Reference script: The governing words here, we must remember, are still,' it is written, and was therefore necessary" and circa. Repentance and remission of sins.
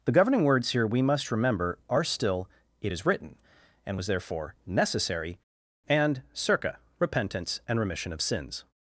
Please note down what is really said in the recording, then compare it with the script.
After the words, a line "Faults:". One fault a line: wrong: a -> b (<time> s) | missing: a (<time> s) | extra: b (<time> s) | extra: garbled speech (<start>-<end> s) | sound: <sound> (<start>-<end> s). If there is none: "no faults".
The governing words here, we must remember, are still,' it is written, and was therefore necessary" and circa. Repentance and remission of sins.
Faults:
no faults